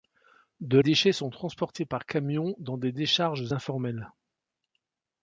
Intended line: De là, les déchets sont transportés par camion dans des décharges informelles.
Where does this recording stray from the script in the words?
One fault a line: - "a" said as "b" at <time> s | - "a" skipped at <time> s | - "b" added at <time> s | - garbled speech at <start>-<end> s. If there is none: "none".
- "là les" skipped at 0.8 s